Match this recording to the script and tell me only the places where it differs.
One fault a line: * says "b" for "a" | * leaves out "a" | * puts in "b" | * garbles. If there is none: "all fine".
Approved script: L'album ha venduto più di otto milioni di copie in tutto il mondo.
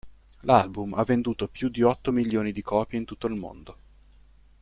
all fine